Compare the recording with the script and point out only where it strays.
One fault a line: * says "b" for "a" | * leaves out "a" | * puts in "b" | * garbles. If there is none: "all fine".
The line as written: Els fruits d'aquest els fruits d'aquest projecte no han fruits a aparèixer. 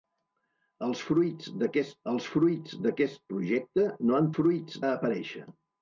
all fine